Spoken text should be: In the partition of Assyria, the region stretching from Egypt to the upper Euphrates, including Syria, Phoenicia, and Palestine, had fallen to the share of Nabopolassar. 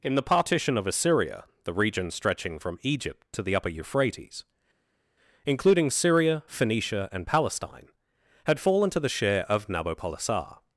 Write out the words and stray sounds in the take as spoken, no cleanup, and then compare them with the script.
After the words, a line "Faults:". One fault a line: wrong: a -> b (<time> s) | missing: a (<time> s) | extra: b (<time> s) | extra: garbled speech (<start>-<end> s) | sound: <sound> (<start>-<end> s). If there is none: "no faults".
In the partition of Assyria, the region stretching from Egypt to the upper Euphrates, including Syria, Phoenicia, and Palestine, had fallen to the share of Nabopolassar.
Faults:
no faults